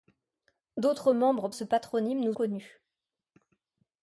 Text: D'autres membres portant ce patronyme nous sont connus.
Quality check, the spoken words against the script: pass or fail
fail